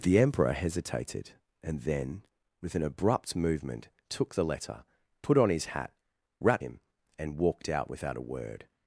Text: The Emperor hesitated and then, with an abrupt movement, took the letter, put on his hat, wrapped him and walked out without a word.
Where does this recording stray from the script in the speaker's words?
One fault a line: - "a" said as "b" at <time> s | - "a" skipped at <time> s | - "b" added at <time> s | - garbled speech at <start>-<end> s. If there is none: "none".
none